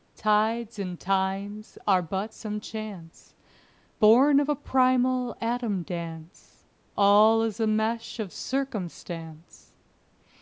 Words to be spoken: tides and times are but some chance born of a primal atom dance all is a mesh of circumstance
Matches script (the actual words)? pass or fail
pass